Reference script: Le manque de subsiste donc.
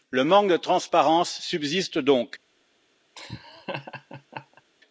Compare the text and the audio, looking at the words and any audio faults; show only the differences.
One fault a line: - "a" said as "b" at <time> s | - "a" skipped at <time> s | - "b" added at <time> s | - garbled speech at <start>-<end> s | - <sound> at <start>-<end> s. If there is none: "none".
- "transparence" added at 0.6 s
- laugh at 3.2-4.6 s